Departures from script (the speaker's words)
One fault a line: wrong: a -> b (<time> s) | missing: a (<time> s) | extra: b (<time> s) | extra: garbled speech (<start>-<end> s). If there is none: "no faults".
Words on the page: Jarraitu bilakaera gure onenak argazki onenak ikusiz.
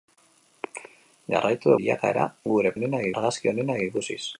no faults